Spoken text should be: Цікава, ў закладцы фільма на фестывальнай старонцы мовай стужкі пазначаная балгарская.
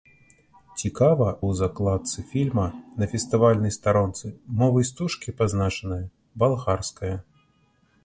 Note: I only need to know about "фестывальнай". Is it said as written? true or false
true